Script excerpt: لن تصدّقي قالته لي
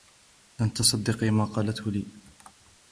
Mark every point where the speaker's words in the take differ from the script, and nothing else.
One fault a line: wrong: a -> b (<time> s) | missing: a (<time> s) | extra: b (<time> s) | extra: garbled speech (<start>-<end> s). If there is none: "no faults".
extra: ما (1.3 s)